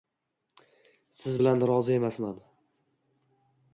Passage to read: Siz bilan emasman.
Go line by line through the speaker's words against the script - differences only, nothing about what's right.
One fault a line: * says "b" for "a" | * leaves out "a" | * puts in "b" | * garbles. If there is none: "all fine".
* puts in "rozi"